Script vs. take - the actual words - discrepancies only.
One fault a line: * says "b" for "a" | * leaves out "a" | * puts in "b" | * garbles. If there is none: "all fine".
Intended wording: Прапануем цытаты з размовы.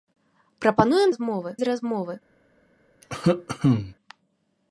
* says "размовы" for "цытаты"